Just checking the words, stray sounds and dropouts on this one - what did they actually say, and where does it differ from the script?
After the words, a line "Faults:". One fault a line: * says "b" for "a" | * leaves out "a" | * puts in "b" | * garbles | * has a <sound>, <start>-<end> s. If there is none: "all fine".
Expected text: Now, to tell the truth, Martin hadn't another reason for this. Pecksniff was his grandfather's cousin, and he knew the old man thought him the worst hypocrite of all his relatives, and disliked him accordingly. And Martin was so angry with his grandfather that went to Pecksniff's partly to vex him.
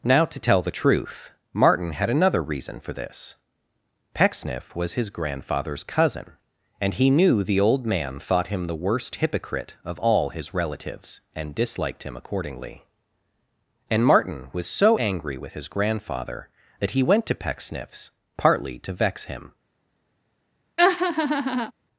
Now, to tell the truth, Martin had another reason for this. Pecksniff was his grandfather's cousin, and he knew the old man thought him the worst hypocrite of all his relatives, and disliked him accordingly. And Martin was so angry with his grandfather that he went to Pecksniff's partly to vex him.
Faults:
* says "had" for "hadn't"
* puts in "he"
* has a laugh, 20.8-21.7 s